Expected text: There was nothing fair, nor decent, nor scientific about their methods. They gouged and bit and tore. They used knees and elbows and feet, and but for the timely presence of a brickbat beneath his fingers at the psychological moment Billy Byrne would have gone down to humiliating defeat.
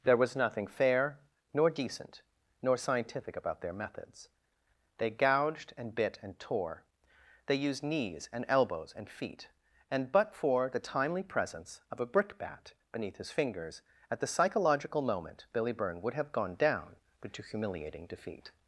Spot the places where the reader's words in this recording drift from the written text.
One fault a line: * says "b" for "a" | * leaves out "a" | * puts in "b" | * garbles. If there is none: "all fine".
* puts in "but"